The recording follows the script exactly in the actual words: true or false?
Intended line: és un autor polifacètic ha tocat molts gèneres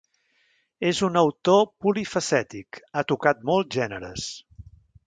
true